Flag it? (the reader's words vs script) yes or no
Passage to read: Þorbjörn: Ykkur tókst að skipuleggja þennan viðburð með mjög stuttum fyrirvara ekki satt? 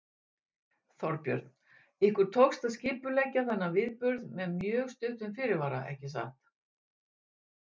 no